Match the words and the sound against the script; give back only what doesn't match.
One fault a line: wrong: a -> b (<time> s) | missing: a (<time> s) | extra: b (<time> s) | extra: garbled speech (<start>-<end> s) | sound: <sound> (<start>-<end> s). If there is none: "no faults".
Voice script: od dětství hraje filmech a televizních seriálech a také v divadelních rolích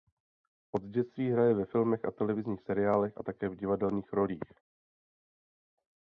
extra: ve (1.5 s)